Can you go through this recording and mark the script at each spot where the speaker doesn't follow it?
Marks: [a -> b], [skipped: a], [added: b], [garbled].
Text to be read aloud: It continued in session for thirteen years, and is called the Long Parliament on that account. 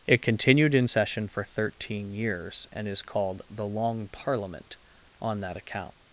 It continued in session for thirteen years, and is called the Long Parliament on that account.